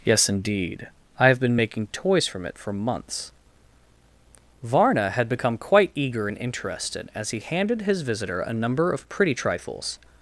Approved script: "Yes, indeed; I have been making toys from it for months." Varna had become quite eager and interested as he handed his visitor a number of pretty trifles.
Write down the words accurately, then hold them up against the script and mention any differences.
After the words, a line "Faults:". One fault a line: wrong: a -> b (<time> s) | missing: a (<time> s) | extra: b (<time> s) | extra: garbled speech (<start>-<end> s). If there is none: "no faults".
"Yes, indeed; I have been making toys from it for months." Varna had become quite eager and interested as he handed his visitor a number of pretty trifles.
Faults:
no faults